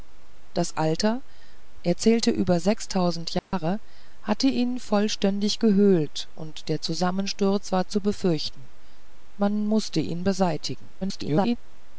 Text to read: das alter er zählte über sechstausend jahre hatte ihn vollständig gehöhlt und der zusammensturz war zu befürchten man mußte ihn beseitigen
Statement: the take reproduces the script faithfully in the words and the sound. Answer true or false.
false